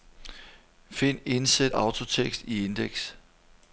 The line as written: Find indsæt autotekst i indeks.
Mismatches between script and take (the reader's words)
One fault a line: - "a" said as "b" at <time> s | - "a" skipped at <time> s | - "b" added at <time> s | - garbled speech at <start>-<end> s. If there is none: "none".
none